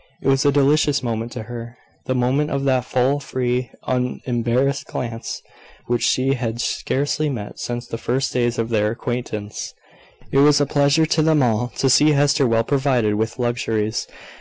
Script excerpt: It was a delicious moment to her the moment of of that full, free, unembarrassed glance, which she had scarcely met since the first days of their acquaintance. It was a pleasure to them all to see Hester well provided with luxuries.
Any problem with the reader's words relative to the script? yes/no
yes